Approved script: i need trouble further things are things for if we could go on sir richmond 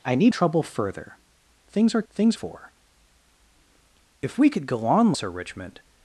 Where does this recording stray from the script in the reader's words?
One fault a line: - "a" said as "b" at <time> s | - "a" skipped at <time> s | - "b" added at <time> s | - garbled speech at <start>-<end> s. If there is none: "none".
none